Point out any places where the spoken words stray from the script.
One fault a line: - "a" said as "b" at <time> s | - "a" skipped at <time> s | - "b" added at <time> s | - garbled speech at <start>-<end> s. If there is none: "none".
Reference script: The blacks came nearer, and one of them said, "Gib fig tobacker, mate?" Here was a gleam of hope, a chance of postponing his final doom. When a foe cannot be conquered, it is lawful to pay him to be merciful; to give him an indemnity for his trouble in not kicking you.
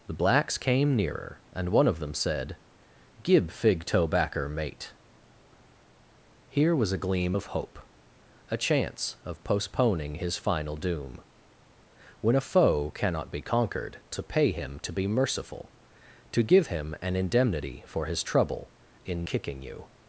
- "it is lawful" skipped at 14.0 s
- "not" skipped at 19.3 s